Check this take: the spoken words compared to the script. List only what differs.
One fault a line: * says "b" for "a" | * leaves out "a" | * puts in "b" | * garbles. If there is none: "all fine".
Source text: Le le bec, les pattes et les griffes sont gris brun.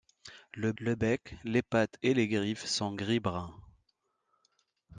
all fine